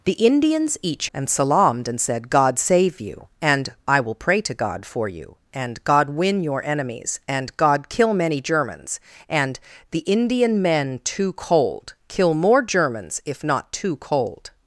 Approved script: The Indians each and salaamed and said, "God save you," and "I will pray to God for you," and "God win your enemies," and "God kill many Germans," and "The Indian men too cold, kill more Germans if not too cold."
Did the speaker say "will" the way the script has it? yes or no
yes